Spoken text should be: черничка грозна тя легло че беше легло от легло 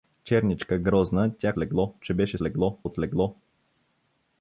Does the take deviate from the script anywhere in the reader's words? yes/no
no